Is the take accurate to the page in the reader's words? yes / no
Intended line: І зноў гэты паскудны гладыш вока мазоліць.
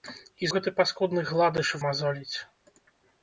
no